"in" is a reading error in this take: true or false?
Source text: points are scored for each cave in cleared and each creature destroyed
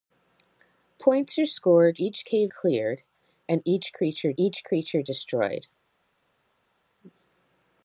true